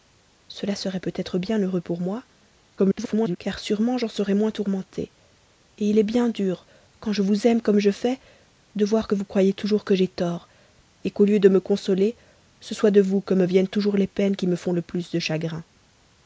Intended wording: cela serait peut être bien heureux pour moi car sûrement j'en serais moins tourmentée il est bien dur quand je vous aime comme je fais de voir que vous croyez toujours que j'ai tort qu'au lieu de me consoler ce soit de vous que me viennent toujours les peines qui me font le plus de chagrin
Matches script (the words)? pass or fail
fail